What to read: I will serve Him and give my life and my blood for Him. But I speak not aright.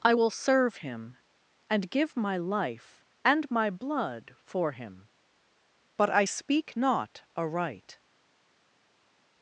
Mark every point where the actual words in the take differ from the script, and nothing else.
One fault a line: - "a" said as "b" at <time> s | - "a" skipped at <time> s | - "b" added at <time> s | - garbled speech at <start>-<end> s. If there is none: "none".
none